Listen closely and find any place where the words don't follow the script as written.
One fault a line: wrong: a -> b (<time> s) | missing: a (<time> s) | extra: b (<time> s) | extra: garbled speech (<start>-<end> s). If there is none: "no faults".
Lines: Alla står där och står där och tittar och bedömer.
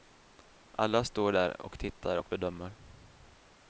missing: står där och (1.8 s)